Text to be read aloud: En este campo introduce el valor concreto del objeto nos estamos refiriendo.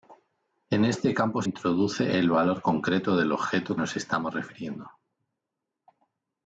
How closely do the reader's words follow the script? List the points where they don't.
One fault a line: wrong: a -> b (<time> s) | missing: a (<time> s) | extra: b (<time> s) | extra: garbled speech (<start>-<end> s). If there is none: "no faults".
no faults